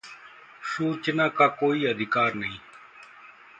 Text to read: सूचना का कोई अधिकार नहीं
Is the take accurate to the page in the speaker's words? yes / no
yes